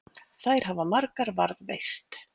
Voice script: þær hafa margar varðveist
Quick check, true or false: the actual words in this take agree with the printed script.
true